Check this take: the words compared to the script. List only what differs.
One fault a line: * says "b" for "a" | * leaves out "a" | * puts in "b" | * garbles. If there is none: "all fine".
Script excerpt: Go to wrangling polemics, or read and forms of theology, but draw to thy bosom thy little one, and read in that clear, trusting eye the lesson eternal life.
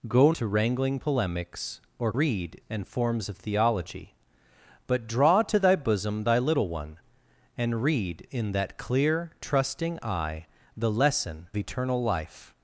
all fine